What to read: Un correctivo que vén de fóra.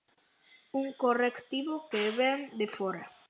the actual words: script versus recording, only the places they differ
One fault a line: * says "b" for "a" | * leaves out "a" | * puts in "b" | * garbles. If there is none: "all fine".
all fine